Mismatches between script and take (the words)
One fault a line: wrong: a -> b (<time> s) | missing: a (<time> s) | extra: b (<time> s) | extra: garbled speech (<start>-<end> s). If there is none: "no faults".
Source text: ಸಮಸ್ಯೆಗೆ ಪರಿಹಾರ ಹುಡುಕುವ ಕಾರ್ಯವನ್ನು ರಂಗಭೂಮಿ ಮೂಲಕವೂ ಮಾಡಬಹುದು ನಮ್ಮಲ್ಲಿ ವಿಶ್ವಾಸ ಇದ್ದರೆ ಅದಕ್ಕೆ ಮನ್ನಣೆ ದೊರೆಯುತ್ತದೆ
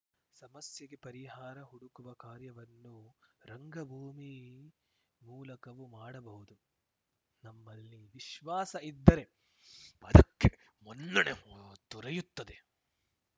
no faults